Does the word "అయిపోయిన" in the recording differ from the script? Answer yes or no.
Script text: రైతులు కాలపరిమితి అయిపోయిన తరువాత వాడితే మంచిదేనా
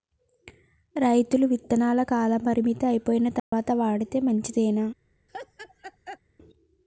no